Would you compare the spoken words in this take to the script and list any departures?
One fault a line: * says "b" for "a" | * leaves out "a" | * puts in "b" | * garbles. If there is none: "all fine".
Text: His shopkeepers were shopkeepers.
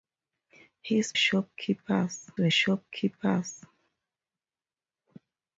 all fine